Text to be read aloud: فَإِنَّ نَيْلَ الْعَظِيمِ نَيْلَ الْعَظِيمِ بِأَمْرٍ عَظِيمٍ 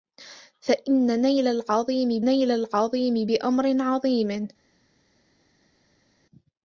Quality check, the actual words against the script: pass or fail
pass